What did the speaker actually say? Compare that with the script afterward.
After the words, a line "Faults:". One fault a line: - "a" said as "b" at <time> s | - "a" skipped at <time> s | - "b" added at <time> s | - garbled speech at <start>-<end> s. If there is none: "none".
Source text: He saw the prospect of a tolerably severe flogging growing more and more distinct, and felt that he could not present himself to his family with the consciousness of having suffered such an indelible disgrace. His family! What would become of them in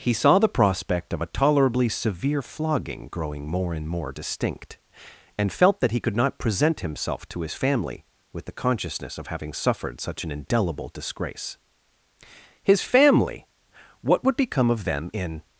He saw the prospect of a tolerably severe flogging growing more and more distinct, and felt that he could not present himself to his family with the consciousness of having suffered such an indelible disgrace. His family! What would become of them in
Faults:
none